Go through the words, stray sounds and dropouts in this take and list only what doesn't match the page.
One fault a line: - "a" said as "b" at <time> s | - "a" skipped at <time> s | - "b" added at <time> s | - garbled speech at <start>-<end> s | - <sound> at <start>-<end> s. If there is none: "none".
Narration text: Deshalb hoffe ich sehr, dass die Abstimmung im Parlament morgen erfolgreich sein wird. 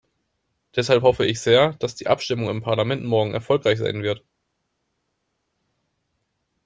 none